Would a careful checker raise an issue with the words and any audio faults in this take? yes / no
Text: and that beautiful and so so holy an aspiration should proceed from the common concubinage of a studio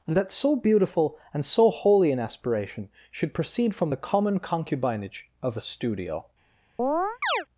yes